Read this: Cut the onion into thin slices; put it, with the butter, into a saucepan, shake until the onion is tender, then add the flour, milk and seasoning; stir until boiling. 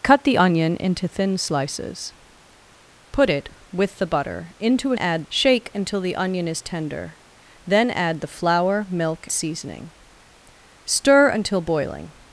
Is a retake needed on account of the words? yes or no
yes